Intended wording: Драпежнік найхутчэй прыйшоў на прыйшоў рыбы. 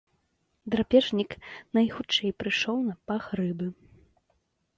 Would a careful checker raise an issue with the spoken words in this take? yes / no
yes